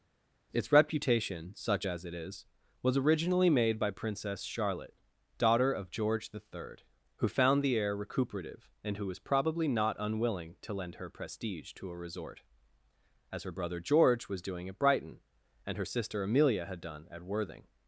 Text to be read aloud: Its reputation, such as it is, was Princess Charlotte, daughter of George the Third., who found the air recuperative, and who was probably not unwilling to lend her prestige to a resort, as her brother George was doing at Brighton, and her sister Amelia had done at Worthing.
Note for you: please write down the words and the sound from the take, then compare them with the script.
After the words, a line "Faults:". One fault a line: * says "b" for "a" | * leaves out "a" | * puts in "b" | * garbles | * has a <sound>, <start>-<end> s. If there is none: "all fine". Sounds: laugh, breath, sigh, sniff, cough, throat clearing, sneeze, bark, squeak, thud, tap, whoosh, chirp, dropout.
Its reputation, such as it is, was originally made by Princess Charlotte, daughter of George the Third., who found the air recuperative, and who was probably not unwilling to lend her prestige to a resort, as her brother George was doing at Brighton, and her sister Amelia had done at Worthing.
Faults:
* puts in "originally made by"